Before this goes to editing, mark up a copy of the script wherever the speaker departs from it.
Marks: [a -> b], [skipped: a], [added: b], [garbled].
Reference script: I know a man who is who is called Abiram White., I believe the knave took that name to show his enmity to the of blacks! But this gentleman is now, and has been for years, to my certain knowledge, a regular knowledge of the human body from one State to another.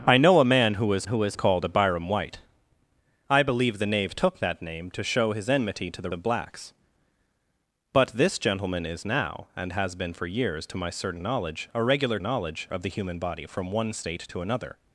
I know a man who is who is called Abiram White., I believe the knave took that name to show his enmity to the of blacks! But this gentleman is now, and has been for years, to my certain knowledge, a regular knowledge of the human body from one State to another.